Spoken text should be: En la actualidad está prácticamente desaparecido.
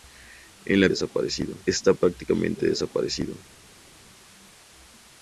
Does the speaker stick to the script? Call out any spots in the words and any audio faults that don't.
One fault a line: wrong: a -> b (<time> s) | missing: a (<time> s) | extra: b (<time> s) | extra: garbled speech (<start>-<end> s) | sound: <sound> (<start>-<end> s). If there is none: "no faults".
wrong: actualidad -> desaparecido (0.9 s)